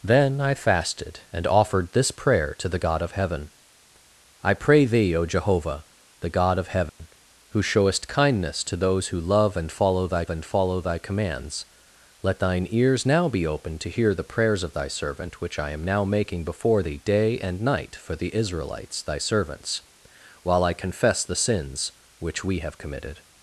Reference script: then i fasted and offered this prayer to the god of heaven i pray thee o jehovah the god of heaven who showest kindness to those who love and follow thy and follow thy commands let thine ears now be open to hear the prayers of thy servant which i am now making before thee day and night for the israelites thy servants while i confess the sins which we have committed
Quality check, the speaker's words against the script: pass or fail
pass